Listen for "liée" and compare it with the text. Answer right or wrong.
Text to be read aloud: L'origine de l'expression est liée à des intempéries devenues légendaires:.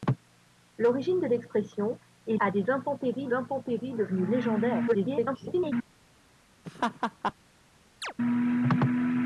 wrong